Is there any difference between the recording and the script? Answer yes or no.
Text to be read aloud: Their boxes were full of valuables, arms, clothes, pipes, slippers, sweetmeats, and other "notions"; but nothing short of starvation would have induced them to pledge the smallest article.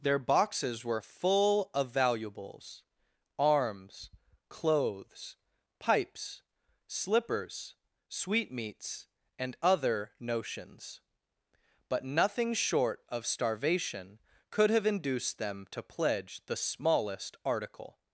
yes